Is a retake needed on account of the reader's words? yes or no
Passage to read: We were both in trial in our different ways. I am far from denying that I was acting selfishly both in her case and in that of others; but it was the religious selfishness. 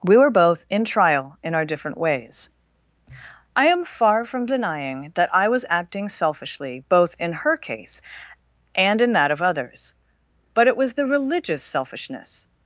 no